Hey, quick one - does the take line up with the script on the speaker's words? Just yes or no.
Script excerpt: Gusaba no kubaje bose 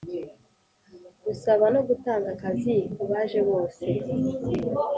no